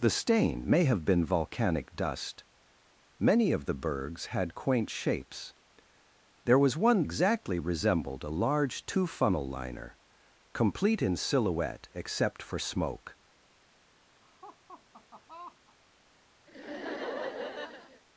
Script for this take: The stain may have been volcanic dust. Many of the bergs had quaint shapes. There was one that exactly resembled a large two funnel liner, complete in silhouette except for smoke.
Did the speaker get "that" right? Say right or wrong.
wrong